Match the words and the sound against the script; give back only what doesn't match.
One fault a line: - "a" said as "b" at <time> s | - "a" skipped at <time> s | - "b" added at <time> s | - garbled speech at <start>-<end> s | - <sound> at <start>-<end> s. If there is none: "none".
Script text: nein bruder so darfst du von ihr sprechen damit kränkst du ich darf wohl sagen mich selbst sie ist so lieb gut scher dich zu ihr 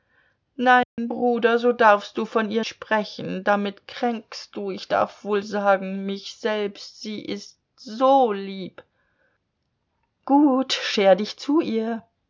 - dropout at 0.8-1.0 s